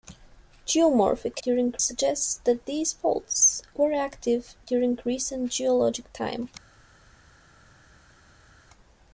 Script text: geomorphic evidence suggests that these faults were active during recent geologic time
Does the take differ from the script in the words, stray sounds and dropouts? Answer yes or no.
yes